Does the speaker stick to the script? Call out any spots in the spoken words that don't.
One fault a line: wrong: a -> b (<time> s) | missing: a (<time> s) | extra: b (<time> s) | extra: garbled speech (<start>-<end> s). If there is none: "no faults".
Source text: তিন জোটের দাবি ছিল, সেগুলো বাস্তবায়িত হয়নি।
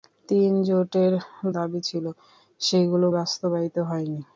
no faults